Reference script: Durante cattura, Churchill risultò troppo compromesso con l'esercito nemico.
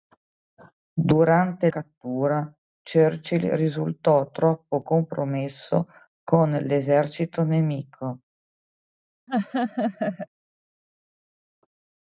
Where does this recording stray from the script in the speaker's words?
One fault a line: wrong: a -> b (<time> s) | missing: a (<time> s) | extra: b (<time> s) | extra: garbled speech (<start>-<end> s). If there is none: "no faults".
no faults